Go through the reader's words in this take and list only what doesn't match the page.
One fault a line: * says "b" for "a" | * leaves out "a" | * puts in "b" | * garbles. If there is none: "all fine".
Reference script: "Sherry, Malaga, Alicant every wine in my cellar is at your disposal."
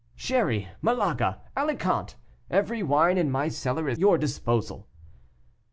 * leaves out "at"